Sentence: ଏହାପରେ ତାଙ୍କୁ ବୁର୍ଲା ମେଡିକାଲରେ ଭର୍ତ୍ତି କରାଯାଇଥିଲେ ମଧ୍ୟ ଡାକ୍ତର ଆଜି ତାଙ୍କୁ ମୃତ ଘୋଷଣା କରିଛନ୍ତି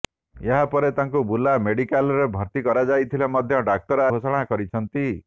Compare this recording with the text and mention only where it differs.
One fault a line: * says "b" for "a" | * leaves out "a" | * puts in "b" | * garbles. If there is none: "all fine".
* leaves out "ଆଜି ତାଙ୍କୁ ମୃତ"